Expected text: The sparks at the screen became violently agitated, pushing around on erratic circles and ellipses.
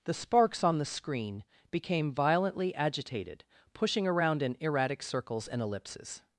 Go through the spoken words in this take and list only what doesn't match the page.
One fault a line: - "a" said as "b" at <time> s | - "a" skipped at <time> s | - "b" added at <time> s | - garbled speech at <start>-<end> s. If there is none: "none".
- "at" said as "on" at 0.6 s
- "on" said as "in" at 4.4 s